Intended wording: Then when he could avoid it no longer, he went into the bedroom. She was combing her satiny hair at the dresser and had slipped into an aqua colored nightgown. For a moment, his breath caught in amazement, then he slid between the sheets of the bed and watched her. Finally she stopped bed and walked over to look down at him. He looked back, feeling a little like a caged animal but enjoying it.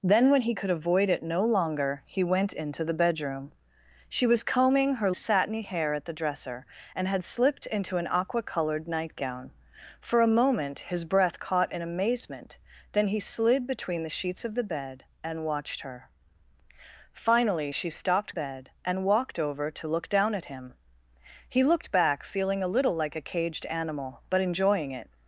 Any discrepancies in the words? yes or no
no